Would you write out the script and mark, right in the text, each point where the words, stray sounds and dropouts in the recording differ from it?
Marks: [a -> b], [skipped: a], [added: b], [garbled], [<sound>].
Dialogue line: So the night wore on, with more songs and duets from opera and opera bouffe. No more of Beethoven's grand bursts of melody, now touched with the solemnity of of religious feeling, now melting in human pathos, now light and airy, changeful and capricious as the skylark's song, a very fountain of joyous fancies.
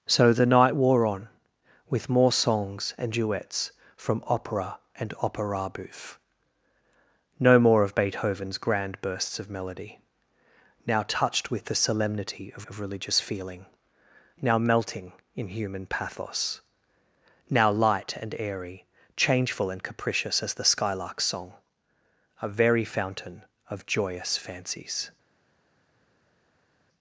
So the night wore on, with more songs and duets from opera and opera bouffe. No more of Beethoven's grand bursts of melody, now touched with the solemnity of of religious feeling, now melting in human pathos, now light and airy, changeful and capricious as the skylark's song, a very fountain of joyous fancies.